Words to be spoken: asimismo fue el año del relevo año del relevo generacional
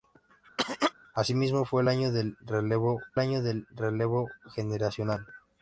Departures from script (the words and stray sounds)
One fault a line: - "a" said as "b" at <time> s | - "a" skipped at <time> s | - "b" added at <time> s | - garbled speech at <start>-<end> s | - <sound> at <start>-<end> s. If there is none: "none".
- cough at 0.6-0.9 s